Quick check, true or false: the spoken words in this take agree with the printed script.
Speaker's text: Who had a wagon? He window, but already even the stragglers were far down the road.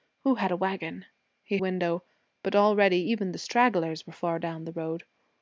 true